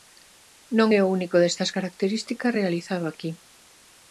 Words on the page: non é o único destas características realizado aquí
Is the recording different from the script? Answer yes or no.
no